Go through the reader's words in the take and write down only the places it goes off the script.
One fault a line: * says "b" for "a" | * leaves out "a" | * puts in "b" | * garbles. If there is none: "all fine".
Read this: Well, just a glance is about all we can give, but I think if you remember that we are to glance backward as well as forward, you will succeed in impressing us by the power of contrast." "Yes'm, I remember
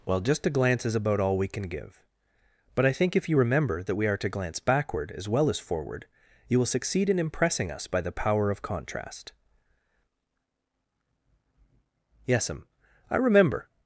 all fine